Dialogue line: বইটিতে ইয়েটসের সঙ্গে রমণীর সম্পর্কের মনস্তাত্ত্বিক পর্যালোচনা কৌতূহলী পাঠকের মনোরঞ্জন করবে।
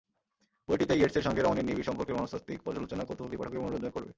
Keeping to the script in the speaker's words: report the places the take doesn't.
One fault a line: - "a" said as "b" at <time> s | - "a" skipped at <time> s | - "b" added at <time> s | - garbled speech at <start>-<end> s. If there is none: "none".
- "নিবিড়" added at 1.7 s